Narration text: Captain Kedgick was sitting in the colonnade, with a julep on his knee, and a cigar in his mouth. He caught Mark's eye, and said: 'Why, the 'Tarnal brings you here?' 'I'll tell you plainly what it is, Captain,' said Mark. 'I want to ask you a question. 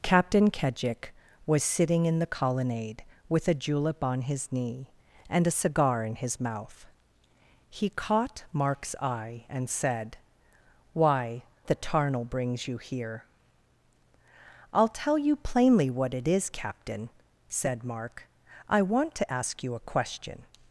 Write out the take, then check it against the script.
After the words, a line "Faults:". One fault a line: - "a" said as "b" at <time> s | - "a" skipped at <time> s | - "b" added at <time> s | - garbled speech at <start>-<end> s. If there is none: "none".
Captain Kedgick was sitting in the colonnade, with a julep on his knee, and a cigar in his mouth. He caught Mark's eye, and said: 'Why, the 'Tarnal brings you here?' 'I'll tell you plainly what it is, Captain,' said Mark. 'I want to ask you a question.
Faults:
none